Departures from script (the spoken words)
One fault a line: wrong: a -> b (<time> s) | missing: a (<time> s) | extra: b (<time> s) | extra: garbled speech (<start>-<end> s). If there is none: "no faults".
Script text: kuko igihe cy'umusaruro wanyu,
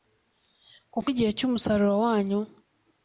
no faults